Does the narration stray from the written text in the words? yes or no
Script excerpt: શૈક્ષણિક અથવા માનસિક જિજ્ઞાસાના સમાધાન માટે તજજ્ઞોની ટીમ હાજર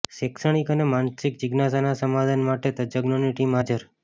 yes